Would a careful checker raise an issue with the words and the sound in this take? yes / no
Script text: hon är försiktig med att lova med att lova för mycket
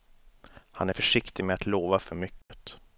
yes